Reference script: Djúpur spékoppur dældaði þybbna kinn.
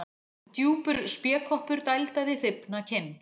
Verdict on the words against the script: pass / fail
pass